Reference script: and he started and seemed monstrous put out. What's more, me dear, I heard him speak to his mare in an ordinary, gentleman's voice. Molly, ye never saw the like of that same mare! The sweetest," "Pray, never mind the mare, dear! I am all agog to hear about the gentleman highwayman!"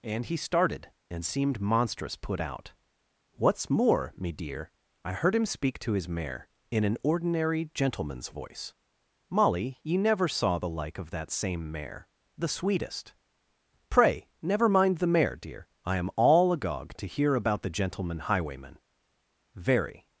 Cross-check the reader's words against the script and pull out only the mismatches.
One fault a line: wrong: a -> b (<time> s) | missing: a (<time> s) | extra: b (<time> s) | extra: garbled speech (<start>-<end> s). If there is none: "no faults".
extra: Very (19.6 s)